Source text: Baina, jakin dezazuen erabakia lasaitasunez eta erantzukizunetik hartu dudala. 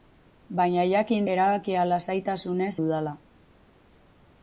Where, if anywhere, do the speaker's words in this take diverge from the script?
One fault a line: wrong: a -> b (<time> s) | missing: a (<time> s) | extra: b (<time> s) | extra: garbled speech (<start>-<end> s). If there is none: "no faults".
missing: dezazuen (1.3 s)
missing: eta erantzukizunetik hartu (2.7 s)